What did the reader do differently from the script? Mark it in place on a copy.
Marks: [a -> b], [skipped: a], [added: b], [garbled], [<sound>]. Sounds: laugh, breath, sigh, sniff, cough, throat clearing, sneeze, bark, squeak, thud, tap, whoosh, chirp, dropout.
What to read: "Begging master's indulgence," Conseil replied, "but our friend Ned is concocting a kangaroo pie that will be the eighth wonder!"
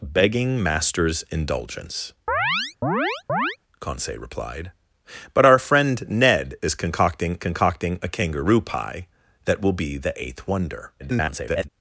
"Begging master's indulgence," [chirp] Conseil replied, "but our friend Ned is concocting [added: concocting] a kangaroo pie that will be the eighth wonder!" [garbled]